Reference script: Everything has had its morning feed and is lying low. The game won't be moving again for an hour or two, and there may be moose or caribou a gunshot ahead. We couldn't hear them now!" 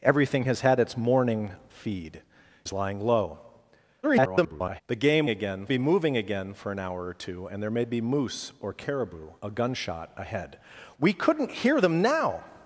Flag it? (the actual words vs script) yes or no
yes